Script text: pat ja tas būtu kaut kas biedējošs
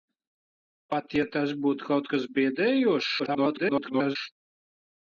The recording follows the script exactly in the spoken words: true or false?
false